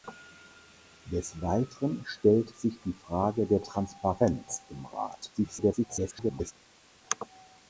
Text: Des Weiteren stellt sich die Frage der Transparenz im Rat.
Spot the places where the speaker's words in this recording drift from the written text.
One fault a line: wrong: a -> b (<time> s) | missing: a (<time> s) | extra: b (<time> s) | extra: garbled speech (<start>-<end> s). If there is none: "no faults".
extra: garbled speech (5.3-6.5 s)